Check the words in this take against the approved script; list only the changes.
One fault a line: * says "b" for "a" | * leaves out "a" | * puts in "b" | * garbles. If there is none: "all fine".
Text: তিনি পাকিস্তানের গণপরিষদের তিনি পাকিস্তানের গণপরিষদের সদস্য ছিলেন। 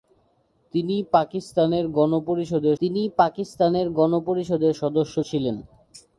all fine